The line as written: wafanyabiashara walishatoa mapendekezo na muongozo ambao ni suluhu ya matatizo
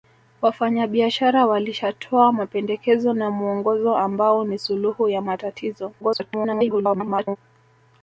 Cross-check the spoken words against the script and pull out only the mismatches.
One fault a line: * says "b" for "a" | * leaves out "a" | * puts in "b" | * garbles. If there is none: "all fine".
* garbles